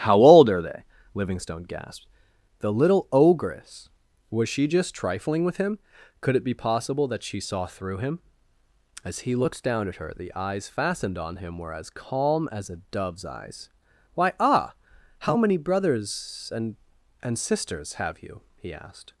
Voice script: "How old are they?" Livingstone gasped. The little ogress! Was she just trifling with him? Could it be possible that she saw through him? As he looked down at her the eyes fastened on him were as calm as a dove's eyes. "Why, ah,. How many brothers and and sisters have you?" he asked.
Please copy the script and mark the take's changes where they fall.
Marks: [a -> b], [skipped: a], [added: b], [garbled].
"How old are they?" Livingstone gasped. The little ogress! Was she just trifling with him? Could it be possible that she saw through him? As he looked down at her the eyes fastened on him were as calm as a dove's eyes. "Why, ah,. How many brothers and and sisters have you?" he asked.